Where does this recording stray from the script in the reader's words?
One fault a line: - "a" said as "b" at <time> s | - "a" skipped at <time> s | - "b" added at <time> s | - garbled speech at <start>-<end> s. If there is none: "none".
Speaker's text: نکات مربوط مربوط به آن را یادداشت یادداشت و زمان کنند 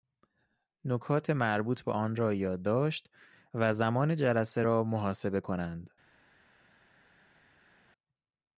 - "مربوط" skipped at 1.8 s
- "یادداشت" skipped at 3.1 s
- "جلسه را محاسبه" added at 4.2 s